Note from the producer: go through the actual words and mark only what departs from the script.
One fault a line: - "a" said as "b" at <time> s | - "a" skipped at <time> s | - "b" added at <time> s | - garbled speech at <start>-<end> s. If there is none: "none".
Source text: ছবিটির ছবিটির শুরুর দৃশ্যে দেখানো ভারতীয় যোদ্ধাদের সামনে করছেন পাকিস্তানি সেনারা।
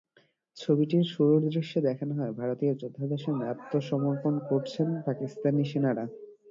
- "ছবিটির" skipped at 1.1 s
- "হয়" added at 2.1 s
- "আত্মসমর্পণ" added at 3.5 s